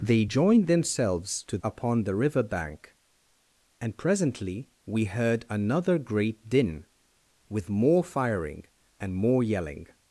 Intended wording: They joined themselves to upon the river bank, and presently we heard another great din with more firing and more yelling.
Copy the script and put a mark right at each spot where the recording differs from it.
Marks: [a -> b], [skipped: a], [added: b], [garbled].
They joined themselves to upon the river bank, and presently we heard another great din with more firing and more yelling.